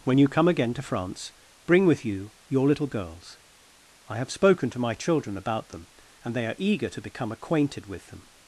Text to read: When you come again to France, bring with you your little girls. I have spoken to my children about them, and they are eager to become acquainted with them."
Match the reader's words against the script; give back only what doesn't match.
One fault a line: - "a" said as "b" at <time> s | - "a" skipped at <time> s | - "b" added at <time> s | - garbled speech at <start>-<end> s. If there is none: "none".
none